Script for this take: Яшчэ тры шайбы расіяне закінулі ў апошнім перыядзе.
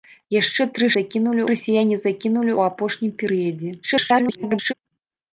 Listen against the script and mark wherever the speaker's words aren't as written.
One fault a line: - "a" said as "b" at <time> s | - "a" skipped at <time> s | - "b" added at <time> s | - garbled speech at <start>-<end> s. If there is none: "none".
- "шайбы" said as "закінулі" at 1.0 s
- garbled speech at 3.8-4.7 s